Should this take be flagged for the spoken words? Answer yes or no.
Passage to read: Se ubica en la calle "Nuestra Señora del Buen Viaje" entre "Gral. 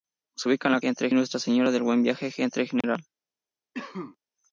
yes